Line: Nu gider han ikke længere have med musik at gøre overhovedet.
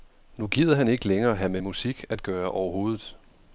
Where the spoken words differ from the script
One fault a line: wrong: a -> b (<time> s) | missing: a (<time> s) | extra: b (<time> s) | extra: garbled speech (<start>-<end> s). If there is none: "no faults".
no faults